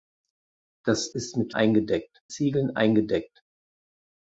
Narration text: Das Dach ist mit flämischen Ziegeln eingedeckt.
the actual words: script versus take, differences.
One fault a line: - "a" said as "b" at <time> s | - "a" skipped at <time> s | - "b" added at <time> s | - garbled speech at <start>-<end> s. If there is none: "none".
- "Dach" skipped at 1.1 s
- "flämischen" said as "eingedeckt" at 1.5 s